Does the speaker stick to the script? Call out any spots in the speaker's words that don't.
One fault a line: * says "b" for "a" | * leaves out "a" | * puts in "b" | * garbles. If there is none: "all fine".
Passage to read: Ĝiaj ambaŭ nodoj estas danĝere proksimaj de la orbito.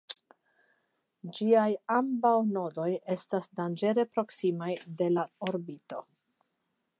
all fine